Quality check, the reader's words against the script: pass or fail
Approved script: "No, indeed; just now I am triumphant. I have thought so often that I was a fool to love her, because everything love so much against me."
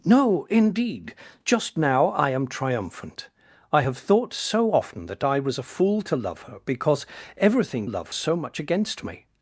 pass